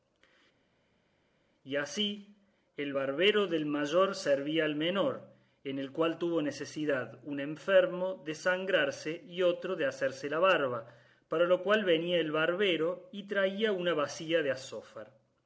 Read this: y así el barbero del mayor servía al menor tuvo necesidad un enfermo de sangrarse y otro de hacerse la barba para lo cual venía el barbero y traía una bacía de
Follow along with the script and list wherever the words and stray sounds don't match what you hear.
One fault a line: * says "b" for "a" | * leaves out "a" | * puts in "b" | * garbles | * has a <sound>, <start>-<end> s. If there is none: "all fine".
* puts in "en el cual"